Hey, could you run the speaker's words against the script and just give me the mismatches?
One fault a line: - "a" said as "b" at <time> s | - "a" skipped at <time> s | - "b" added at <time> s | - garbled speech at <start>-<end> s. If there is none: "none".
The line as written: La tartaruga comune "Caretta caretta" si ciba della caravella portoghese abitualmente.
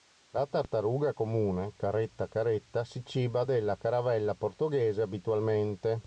none